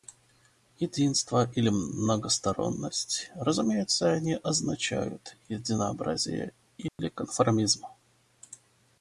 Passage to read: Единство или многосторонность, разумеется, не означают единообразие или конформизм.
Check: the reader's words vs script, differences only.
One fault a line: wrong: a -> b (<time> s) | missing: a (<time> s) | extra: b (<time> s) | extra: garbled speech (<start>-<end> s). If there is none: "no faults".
no faults